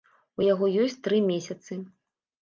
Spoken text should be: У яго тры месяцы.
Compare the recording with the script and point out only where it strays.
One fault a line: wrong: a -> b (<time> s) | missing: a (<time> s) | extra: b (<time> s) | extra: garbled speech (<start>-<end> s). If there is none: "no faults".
extra: ёсць (0.8 s)